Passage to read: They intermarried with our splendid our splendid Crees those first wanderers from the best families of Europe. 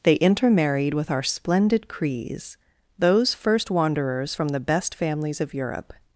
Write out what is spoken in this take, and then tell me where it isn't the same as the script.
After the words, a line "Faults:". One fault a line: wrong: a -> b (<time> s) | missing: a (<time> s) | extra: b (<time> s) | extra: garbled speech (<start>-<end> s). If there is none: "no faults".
They intermarried with our splendid Crees those first wanderers from the best families of Europe.
Faults:
missing: our splendid (1.9 s)